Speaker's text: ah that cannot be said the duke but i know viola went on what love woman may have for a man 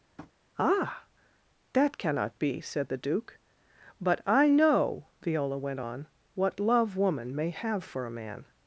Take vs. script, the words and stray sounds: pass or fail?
fail